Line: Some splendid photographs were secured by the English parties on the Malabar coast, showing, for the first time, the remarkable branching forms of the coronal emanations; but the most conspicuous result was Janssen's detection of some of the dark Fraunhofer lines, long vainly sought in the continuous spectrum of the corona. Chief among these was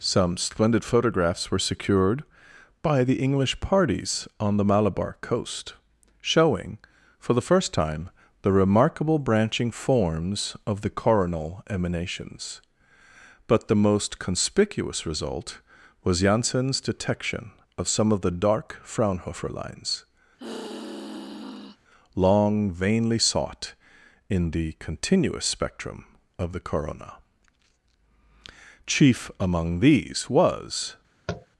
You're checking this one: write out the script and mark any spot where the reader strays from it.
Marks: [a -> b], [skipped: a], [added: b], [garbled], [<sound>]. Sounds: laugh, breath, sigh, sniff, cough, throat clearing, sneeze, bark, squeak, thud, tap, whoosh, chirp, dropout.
Some splendid photographs were secured by the English parties on the Malabar coast, showing, for the first time, the remarkable branching forms of the coronal emanations; but the most conspicuous result was Janssen's detection of some of the dark Fraunhofer lines, [sigh] long vainly sought in the continuous spectrum of the corona. Chief among these was [tap]